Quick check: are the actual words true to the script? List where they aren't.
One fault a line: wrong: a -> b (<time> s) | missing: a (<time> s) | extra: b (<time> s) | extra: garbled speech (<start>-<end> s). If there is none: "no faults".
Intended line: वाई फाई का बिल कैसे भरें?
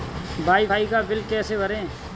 no faults